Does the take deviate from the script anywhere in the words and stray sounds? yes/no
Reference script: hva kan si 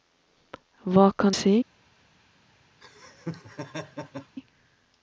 yes